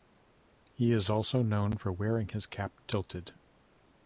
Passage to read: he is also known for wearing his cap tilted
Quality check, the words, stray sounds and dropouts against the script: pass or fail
pass